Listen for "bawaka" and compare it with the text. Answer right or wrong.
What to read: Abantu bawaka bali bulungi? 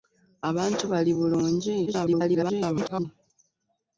wrong